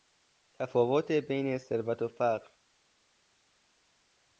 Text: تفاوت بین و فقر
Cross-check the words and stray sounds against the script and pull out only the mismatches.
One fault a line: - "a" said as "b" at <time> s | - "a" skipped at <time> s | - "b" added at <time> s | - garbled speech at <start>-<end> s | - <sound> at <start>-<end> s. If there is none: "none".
- "ثروت" added at 1.6 s